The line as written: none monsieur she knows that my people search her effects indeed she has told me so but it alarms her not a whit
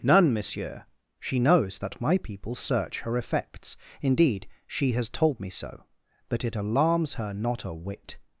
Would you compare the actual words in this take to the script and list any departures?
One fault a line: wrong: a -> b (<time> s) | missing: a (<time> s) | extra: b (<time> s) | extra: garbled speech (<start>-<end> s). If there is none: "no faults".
no faults